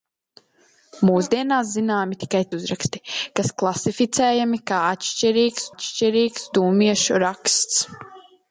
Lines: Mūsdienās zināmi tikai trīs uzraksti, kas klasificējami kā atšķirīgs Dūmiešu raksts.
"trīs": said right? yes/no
no